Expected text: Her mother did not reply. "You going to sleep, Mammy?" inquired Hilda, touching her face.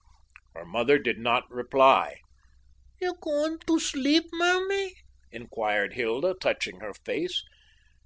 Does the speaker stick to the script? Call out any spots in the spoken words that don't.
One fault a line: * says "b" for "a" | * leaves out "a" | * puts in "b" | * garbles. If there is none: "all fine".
all fine